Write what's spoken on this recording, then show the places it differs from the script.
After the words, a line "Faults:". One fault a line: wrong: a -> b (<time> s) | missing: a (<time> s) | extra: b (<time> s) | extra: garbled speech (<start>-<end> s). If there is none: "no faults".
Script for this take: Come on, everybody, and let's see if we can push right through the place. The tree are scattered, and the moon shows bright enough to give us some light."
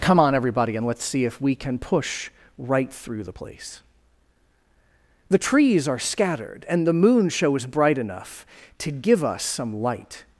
Come on, everybody, and let's see if we can push right through the place. The trees are scattered, and the moon shows bright enough to give us some light."
Faults:
wrong: tree -> trees (5.4 s)